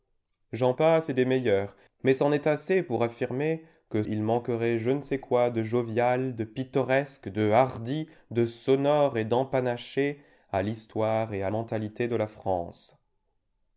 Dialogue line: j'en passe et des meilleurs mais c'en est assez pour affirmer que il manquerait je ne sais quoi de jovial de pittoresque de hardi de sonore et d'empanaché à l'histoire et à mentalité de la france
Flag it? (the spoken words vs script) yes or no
no